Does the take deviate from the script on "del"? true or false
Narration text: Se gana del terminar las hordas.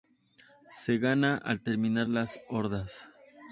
true